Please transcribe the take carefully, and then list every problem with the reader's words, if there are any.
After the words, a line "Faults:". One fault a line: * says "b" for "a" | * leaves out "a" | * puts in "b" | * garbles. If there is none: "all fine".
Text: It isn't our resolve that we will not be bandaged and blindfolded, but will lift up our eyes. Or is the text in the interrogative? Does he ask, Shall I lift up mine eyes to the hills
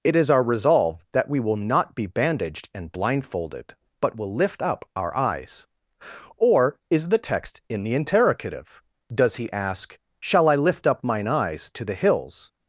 It is our resolve that we will not be bandaged and blindfolded, but will lift up our eyes. Or is the text in the interrogative? Does he ask, Shall I lift up mine eyes to the hills
Faults:
* says "is" for "isn't"